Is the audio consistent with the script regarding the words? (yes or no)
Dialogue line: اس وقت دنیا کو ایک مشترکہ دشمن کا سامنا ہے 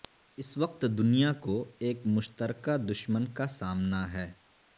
yes